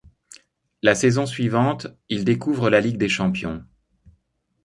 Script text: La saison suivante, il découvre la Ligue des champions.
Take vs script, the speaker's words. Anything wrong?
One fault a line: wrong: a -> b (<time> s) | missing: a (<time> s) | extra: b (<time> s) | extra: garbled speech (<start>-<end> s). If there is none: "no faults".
no faults